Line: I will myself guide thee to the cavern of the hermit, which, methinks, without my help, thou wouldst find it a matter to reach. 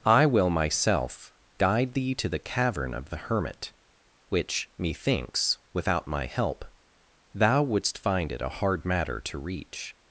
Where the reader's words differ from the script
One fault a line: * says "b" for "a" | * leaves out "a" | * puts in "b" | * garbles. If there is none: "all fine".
* puts in "hard"